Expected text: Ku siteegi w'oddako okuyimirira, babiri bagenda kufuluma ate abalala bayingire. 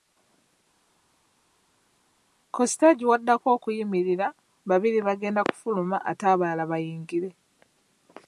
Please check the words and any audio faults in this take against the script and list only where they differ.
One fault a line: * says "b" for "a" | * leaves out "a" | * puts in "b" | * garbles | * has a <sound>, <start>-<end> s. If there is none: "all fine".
all fine